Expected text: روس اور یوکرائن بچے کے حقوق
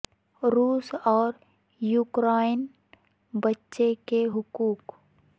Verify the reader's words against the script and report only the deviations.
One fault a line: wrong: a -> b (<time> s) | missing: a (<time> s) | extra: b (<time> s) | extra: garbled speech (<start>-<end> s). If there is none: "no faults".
no faults